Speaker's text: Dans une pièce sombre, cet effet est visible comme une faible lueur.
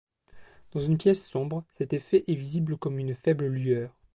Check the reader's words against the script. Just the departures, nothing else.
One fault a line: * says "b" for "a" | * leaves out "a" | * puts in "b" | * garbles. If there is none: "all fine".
all fine